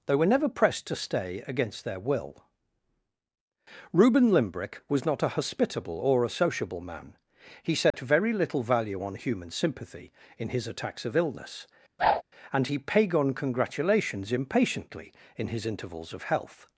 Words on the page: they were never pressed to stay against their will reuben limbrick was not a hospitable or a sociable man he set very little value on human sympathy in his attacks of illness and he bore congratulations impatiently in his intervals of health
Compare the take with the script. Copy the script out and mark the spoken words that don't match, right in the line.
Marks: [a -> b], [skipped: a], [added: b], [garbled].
they were never pressed to stay against their will reuben limbrick was not a hospitable or a sociable man he set very little value on human sympathy in his attacks of illness and he [bore -> pagon] congratulations impatiently in his intervals of health